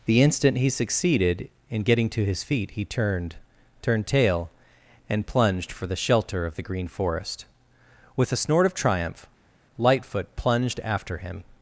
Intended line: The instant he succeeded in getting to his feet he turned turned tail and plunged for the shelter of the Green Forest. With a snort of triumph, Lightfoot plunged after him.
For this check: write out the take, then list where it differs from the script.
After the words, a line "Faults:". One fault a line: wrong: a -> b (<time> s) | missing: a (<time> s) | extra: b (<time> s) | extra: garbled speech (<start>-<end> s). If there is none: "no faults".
The instant he succeeded in getting to his feet he turned turned tail and plunged for the shelter of the Green Forest. With a snort of triumph, Lightfoot plunged after him.
Faults:
no faults